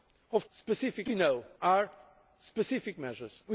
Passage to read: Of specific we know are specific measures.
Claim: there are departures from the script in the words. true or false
false